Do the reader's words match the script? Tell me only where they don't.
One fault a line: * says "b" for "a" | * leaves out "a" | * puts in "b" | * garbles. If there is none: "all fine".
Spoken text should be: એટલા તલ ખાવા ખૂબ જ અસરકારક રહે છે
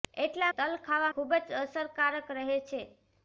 all fine